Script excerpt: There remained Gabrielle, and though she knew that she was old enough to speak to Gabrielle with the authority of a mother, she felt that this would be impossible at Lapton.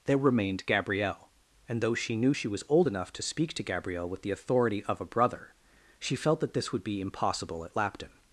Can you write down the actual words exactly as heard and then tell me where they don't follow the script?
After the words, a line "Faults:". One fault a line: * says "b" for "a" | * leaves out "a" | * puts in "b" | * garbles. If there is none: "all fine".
There remained Gabrielle, and though she knew she was old enough to speak to Gabrielle with the authority of a brother, she felt that this would be impossible at Lapton.
Faults:
* leaves out "that"
* says "brother" for "mother"